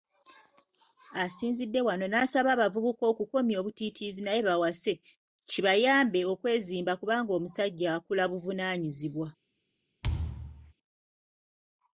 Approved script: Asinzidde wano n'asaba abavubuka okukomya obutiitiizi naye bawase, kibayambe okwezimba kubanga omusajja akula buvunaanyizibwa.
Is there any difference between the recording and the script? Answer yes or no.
no